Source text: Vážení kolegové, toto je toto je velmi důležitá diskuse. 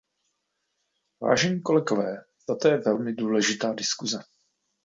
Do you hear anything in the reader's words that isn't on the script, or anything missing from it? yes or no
yes